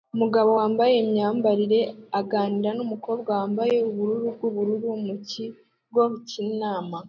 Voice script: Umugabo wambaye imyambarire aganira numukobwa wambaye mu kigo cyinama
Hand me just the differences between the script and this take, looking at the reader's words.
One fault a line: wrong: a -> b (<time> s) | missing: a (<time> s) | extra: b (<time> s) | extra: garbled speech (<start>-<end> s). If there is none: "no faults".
extra: ubururu bwubururu (3.9 s)